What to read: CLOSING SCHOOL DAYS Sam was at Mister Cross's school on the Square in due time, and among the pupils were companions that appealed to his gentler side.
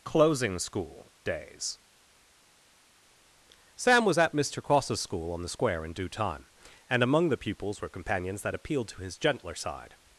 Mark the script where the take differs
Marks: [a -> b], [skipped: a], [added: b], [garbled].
CLOSING SCHOOL DAYS Sam was at Mister Cross's school on the Square in due time, and among the pupils were companions that appealed to his gentler side.